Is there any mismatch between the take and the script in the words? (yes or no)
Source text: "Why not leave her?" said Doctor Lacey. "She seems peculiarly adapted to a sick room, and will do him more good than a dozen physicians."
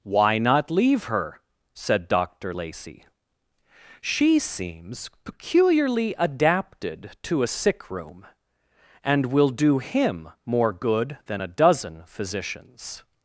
no